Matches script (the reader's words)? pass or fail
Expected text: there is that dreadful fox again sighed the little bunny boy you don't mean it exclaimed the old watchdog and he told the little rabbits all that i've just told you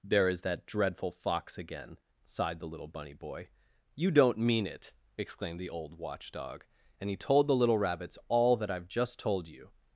pass